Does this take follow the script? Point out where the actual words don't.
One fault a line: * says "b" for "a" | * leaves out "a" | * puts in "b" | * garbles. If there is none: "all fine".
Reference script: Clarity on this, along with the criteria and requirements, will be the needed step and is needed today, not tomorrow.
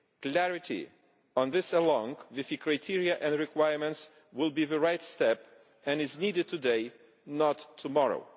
* says "right" for "needed"